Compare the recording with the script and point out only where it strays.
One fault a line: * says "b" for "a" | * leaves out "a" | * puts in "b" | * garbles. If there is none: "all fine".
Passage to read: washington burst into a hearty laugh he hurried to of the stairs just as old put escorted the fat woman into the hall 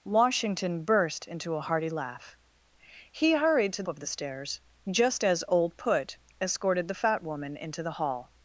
all fine